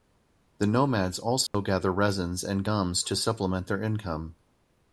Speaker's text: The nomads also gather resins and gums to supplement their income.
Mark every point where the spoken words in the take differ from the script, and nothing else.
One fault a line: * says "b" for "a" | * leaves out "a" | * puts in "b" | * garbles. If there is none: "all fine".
all fine